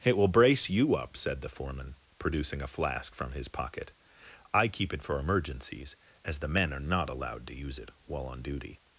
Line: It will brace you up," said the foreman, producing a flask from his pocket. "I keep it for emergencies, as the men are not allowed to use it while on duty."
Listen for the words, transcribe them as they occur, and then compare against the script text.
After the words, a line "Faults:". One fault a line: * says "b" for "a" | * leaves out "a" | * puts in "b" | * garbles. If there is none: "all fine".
It will brace you up," said the foreman, producing a flask from his pocket. "I keep it for emergencies, as the men are not allowed to use it while on duty."
Faults:
all fine